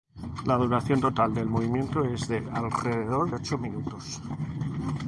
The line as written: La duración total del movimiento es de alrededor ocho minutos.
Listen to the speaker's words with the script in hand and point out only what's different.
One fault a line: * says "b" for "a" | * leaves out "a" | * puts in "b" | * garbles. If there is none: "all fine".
all fine